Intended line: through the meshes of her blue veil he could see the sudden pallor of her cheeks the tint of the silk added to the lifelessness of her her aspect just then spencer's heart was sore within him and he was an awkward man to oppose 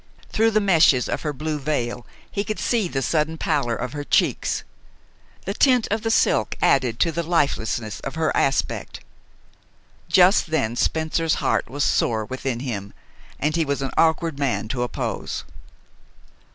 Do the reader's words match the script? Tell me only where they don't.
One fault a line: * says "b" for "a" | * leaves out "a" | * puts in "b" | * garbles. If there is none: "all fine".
* leaves out "her"